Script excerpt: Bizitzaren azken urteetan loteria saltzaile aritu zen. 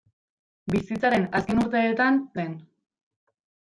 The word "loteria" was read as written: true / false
false